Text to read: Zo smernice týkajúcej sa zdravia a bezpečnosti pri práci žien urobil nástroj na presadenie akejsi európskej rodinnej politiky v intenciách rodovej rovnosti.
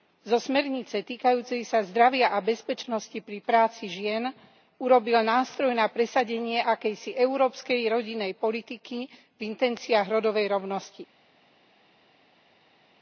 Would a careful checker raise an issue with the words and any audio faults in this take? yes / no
no